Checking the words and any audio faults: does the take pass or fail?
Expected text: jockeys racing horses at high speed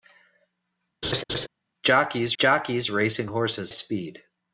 fail